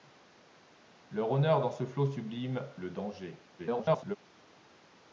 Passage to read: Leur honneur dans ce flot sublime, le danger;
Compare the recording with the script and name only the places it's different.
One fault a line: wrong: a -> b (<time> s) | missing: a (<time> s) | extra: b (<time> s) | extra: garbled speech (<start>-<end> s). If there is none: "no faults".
extra: garbled speech (3.6-4.2 s)